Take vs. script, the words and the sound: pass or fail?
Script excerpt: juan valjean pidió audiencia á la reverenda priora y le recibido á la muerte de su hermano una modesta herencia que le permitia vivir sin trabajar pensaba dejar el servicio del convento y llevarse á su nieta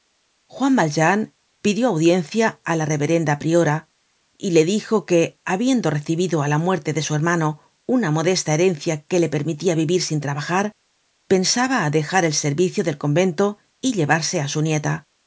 fail